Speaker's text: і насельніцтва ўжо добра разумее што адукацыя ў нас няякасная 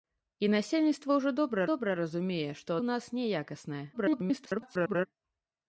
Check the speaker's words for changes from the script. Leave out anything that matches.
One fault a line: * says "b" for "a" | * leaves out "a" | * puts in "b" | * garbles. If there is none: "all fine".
* puts in "добра"
* leaves out "адукацыя"
* garbles